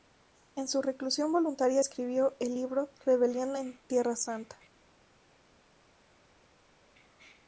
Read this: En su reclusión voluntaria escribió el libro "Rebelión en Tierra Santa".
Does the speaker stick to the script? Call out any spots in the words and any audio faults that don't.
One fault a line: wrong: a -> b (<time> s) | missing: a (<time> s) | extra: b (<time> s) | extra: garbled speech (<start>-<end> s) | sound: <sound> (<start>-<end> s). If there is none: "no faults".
no faults